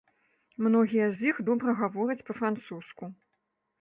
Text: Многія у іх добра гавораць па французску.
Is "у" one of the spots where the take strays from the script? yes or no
yes